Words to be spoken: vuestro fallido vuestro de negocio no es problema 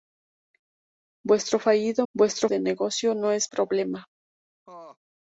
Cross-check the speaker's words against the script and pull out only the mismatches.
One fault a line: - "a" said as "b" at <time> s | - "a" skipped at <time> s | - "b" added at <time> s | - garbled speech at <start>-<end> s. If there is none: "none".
none